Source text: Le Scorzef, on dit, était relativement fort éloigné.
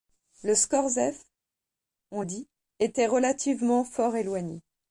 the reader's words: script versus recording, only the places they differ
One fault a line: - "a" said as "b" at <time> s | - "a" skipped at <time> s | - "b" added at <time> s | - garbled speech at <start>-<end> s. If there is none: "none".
none